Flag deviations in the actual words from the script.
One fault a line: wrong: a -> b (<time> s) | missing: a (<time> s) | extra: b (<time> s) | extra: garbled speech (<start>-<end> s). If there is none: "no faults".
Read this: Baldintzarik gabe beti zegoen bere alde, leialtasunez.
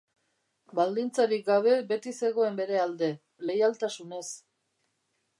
no faults